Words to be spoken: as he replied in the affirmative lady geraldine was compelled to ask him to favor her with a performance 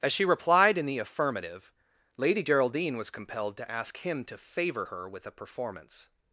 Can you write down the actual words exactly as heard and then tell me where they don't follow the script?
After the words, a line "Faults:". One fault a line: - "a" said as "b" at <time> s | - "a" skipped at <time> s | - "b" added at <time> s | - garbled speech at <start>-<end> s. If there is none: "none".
as she replied in the affirmative lady geraldine was compelled to ask him to favor her with a performance
Faults:
- "he" said as "she" at 0.1 s